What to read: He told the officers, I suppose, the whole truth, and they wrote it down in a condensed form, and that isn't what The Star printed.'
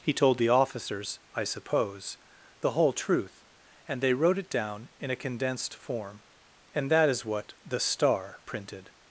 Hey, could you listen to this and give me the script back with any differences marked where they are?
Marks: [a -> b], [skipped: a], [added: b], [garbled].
He told the officers, I suppose, the whole truth, and they wrote it down in a condensed form, and that [isn't -> is] what The Star printed.'